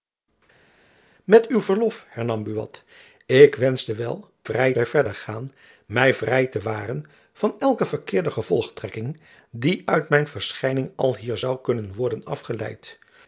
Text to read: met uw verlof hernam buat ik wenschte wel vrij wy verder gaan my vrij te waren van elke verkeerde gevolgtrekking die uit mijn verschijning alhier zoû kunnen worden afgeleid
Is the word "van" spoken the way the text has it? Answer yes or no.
yes